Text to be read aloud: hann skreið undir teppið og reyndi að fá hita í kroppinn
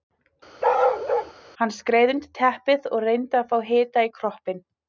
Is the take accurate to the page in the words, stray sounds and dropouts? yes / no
no